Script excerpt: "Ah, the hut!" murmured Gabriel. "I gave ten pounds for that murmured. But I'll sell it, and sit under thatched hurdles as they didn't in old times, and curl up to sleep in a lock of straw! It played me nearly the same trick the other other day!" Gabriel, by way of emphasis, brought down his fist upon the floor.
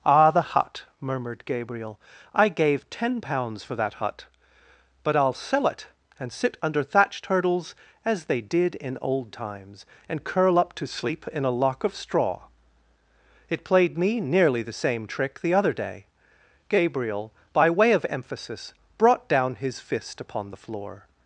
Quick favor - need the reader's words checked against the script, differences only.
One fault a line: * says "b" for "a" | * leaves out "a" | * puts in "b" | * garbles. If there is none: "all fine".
* says "hut" for "murmured"
* says "did" for "didn't"
* leaves out "other"